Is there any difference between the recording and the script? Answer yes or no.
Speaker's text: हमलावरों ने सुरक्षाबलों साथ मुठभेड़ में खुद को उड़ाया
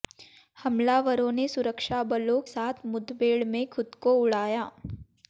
no